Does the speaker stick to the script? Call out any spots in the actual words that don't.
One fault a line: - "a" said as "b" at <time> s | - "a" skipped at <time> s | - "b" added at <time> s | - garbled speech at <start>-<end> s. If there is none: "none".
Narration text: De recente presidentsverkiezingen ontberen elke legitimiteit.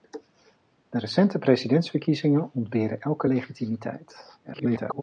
- garbled speech at 4.4-5.0 s